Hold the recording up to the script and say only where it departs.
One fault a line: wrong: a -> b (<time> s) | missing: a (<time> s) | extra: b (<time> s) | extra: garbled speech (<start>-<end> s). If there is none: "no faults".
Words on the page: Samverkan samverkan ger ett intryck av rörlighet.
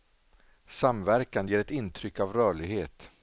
missing: samverkan (1.5 s)